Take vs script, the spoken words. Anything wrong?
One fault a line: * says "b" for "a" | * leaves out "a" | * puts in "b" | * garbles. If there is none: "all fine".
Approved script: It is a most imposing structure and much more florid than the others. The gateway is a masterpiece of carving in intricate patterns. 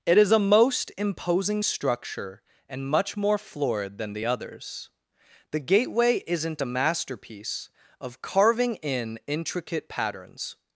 * says "isn't" for "is"